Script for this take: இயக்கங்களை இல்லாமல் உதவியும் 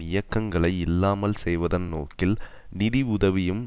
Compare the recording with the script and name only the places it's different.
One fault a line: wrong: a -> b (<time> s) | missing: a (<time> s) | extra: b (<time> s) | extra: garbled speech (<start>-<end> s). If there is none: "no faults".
extra: செய்வதன் நோக்கில் நிதி (1.4 s)